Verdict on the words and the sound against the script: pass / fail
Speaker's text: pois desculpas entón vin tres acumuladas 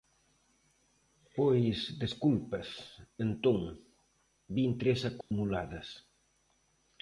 fail